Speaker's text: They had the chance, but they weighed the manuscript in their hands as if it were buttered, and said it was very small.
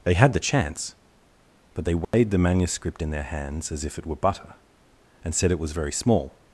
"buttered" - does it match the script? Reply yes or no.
no